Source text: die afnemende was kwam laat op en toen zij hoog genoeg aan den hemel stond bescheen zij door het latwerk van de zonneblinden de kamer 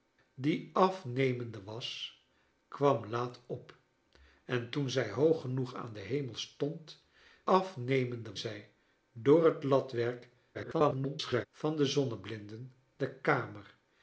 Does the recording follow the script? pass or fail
fail